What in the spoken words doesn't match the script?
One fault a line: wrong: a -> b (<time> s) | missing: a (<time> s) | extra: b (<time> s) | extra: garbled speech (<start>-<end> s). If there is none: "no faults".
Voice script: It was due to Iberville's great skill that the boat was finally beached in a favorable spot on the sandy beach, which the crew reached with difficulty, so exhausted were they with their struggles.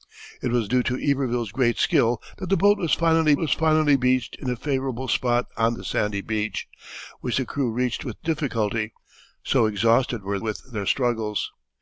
extra: was finally (3.4 s)
missing: they (10.4 s)